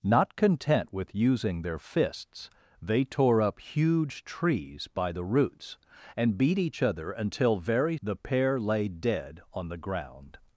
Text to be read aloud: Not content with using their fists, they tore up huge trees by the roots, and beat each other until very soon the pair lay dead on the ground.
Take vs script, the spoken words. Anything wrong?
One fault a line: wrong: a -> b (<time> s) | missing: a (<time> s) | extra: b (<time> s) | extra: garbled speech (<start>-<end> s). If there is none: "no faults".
missing: soon (8.0 s)